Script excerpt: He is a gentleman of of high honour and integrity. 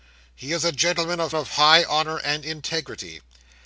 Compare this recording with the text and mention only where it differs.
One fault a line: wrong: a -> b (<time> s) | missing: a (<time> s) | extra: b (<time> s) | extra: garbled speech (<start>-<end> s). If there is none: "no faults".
no faults